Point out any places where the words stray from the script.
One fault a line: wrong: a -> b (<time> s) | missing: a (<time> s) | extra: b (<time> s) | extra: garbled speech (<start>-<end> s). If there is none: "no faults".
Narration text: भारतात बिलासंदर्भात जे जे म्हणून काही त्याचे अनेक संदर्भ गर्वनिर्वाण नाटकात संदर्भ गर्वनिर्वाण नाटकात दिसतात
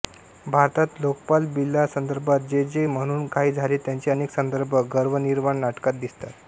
extra: लोकपाल (1.0 s)
extra: झाले (3.5 s)
missing: संदर्भ गर्वनिर्वाण नाटकात (5.9 s)